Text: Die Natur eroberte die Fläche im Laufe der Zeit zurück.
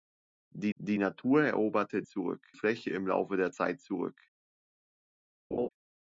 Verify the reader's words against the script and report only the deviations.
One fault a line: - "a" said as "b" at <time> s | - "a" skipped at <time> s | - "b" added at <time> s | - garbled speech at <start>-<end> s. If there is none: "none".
- "die" added at 0.8 s
- "die" said as "zurück" at 2.1 s